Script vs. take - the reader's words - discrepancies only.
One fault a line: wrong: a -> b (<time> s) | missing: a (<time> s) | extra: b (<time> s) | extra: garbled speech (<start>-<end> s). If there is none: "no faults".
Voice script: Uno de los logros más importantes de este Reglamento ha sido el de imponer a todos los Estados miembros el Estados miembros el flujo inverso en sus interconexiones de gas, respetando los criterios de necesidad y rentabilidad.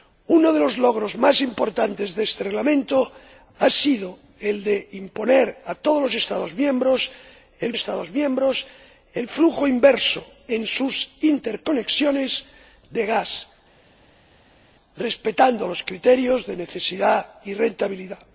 no faults